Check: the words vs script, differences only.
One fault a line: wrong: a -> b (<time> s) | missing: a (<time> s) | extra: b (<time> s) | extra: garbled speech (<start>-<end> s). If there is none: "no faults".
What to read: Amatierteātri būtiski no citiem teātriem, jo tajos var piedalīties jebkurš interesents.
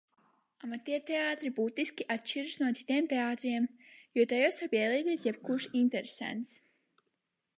extra: atšķiras (2.1 s)